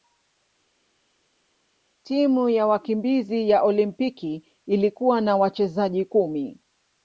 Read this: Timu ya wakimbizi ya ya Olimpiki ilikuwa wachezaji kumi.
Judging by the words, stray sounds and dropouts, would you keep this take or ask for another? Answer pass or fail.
fail